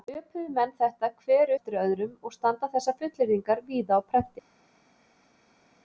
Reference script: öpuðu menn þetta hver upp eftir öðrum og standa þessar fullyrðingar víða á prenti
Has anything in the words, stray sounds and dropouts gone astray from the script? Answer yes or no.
yes